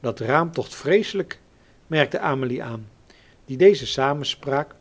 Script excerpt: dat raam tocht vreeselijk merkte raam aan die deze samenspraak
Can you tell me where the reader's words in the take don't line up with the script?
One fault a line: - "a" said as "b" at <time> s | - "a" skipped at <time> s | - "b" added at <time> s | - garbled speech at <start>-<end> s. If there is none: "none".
- "raam" said as "amelie" at 2.2 s